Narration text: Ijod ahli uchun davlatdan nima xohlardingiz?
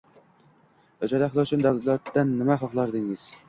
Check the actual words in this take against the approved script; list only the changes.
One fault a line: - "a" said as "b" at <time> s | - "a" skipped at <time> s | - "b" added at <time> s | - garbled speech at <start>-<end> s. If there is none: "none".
none